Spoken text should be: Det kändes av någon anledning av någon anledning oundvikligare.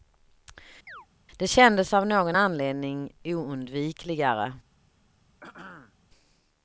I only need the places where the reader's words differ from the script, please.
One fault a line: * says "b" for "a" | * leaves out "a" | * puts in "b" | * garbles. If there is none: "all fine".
* leaves out "av någon anledning"